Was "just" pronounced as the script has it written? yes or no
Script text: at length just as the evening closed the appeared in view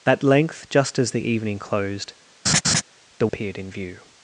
yes